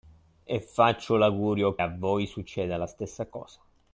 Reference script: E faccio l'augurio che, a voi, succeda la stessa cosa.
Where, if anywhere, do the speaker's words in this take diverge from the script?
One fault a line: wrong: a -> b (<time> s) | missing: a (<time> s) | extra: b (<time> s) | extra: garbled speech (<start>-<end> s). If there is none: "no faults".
missing: che (1.8 s)